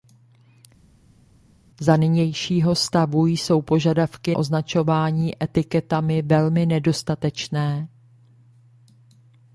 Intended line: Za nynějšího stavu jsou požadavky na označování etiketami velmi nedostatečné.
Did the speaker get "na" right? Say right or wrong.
wrong